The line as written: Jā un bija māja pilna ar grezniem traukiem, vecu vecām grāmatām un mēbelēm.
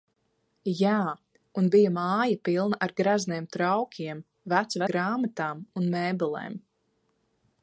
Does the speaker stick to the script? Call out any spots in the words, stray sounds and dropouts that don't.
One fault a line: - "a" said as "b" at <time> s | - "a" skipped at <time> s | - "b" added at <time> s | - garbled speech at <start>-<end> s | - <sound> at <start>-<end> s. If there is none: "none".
- "vecām" skipped at 4.8 s